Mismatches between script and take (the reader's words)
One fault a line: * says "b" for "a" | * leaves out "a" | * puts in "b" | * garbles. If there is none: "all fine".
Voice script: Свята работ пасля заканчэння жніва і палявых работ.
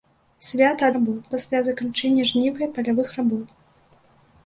all fine